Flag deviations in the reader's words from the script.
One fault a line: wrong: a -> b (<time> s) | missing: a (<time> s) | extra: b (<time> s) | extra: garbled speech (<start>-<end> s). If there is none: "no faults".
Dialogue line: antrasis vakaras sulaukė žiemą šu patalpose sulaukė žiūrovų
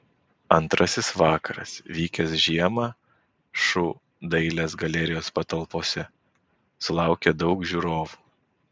wrong: sulaukė -> vykęs (2.0 s)
extra: dailės galerijos (4.4 s)
extra: daug (7.4 s)